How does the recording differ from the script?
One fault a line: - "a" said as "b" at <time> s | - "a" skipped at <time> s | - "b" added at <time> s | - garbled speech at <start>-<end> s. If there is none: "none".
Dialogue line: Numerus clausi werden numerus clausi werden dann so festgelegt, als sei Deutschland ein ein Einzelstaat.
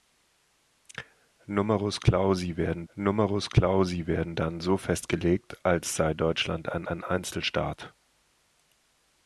none